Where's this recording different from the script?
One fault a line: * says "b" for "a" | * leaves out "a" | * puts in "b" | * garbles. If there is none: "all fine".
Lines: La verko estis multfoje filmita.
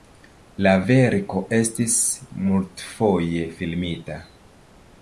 all fine